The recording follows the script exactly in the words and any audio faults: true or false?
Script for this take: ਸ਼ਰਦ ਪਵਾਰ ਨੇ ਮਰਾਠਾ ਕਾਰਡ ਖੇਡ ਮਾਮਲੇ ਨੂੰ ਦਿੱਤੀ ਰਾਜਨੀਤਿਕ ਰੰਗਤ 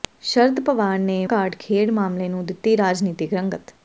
false